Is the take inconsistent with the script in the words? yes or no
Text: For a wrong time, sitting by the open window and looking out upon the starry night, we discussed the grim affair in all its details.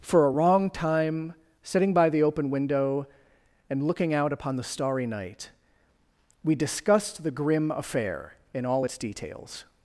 no